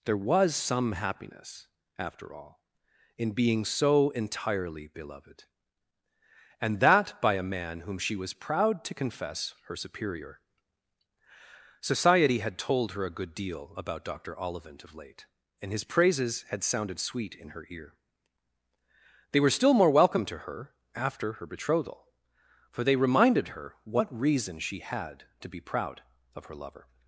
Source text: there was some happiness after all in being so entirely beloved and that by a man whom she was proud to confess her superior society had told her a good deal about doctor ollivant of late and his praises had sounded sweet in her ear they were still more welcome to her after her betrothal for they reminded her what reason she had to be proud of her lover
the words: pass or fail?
pass